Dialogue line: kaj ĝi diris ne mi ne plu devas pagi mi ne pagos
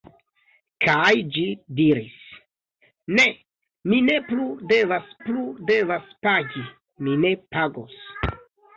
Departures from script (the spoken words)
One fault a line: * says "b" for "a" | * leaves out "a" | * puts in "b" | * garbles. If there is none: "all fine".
* puts in "plu devas"